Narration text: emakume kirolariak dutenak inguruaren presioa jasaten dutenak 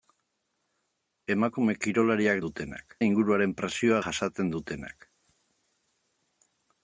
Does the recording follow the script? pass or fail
pass